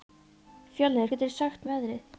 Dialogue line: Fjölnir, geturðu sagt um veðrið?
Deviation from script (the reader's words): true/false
false